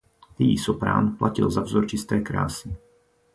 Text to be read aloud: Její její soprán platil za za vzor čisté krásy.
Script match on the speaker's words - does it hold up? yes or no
no